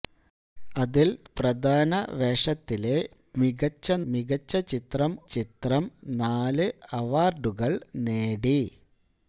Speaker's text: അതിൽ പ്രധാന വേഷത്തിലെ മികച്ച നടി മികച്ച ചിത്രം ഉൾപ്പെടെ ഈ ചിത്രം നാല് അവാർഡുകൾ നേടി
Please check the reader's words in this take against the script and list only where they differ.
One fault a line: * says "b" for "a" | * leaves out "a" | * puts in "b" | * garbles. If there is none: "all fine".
* leaves out "നടി"
* leaves out "ഉൾപ്പെടെ ഈ"